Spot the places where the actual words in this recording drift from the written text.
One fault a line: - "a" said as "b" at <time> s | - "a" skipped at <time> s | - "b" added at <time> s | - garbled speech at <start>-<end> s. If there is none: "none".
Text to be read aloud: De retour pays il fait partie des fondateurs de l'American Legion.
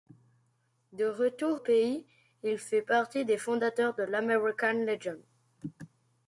none